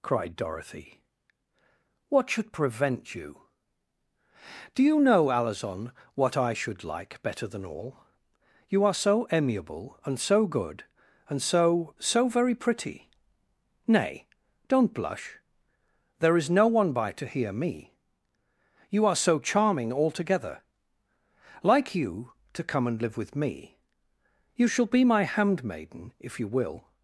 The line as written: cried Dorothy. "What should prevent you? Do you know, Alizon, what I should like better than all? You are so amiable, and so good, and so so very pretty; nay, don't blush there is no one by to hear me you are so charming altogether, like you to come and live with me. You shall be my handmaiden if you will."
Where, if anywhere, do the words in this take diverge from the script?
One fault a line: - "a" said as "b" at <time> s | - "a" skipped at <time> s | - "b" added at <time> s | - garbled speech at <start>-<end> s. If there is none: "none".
none